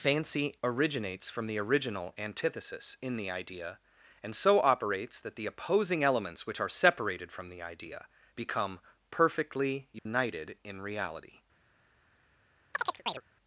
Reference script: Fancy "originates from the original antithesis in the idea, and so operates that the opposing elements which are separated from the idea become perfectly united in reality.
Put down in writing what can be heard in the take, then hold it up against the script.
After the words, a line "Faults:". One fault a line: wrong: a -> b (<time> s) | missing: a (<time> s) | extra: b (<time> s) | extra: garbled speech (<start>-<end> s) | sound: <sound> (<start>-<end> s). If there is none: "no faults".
Fancy "originates from the original antithesis in the idea, and so operates that the opposing elements which are separated from the idea become perfectly united in reality.
Faults:
sound: dropout (10.0-10.1 s)
sound: chirp (12.7-13.2 s)